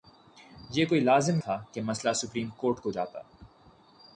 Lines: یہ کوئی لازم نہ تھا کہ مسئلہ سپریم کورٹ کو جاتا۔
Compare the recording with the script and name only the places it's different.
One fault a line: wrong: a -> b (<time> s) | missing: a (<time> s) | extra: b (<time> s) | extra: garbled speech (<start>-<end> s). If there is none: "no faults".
missing: نہ (1.4 s)